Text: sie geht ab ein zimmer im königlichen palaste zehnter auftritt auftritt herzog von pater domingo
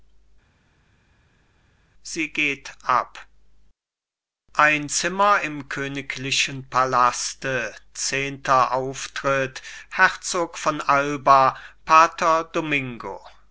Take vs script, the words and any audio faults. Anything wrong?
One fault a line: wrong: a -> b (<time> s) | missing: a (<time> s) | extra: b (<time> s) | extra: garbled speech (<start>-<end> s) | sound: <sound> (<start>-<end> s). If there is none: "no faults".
missing: auftritt (9.6 s)
extra: alba (10.8 s)